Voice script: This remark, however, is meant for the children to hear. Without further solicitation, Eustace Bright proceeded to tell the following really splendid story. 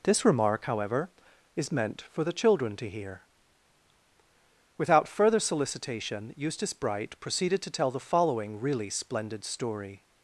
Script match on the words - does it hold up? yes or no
yes